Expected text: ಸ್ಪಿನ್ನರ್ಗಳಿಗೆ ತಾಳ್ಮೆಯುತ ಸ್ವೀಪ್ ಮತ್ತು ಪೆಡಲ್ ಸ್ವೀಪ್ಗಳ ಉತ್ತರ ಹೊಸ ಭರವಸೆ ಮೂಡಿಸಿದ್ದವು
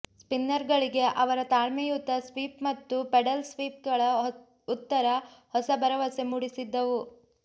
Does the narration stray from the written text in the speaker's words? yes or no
yes